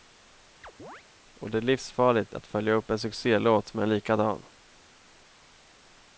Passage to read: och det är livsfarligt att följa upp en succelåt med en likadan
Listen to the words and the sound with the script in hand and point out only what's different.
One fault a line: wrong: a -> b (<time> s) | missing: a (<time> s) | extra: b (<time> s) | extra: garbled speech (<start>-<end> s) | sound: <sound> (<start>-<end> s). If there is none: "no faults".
sound: chirp (0.6-1.0 s)